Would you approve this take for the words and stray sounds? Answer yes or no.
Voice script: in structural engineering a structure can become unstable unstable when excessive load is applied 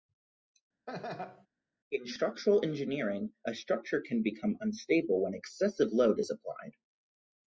no